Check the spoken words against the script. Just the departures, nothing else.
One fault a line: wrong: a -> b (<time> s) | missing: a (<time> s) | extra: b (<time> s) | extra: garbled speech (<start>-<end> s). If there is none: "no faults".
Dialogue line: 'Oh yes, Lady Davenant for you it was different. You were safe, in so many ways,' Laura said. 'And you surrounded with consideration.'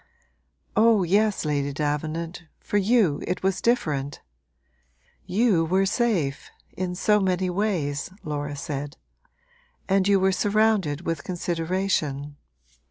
extra: were (10.2 s)